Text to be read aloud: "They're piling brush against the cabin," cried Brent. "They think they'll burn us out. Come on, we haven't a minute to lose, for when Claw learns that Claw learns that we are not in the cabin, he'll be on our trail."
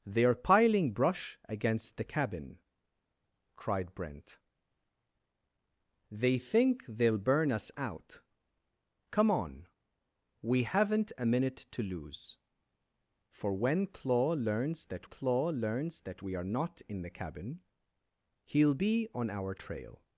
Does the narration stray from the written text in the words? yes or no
no